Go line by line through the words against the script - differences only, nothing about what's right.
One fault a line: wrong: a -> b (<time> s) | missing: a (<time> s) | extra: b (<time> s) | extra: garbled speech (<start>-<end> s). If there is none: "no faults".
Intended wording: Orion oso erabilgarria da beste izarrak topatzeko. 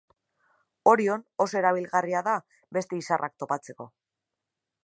no faults